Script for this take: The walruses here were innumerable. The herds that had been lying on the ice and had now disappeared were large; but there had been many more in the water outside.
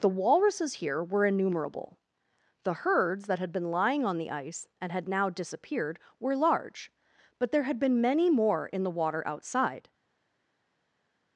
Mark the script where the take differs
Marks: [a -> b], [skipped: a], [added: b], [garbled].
The walruses here were innumerable. The herds that had been lying on the ice and had now disappeared were large; but there had been many more in the water outside.